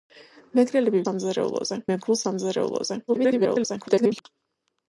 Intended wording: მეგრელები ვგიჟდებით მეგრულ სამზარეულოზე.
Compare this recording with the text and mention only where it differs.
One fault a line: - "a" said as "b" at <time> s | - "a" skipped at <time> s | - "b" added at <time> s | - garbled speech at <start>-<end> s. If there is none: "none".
- "ვგიჟდებით" said as "სამზარეულოზე" at 1.0 s
- garbled speech at 3.1-4.2 s